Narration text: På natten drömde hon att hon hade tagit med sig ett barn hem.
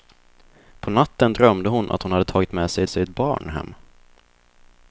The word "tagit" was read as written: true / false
true